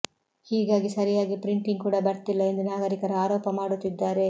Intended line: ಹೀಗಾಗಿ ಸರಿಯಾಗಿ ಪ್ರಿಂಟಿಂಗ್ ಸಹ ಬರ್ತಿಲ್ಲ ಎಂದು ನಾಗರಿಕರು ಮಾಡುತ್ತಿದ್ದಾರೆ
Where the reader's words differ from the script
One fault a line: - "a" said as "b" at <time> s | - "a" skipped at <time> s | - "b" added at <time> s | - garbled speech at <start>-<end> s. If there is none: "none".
- "ಸಹ" said as "ಕೂಡ" at 1.8 s
- "ಆರೋಪ" added at 3.2 s